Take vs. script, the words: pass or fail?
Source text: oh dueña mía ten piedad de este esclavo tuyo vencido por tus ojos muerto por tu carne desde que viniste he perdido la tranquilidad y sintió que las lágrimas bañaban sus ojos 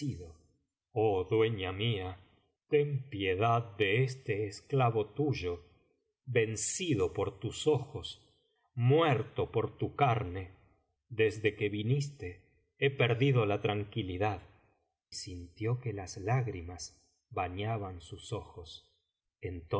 fail